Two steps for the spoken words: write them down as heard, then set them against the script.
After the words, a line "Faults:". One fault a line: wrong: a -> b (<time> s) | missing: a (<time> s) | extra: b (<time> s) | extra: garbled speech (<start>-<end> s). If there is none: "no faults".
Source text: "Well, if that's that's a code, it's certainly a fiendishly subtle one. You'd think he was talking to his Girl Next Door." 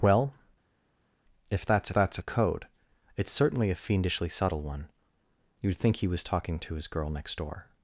"Well, if that's that's a code, it's certainly a fiendishly subtle one. You'd think he was talking to his Girl Next Door."
Faults:
no faults